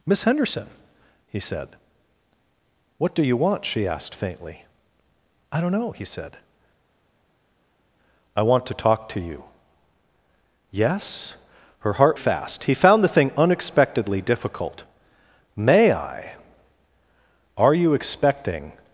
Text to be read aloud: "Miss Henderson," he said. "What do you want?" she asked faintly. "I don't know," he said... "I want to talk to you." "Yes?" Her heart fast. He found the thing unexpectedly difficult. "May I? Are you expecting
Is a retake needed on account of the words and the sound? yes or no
no